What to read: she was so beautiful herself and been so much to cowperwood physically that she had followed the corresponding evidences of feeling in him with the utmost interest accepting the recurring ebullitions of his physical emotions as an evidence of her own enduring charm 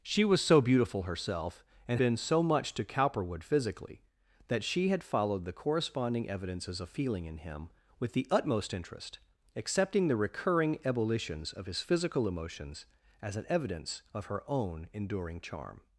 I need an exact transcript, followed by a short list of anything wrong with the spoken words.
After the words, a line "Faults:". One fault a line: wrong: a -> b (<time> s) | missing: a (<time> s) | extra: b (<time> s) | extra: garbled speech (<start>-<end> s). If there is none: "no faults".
she was so beautiful herself and been so much to cowperwood physically that she had followed the corresponding evidences of feeling in him with the utmost interest accepting the recurring ebullitions of his physical emotions as an evidence of her own enduring charm
Faults:
no faults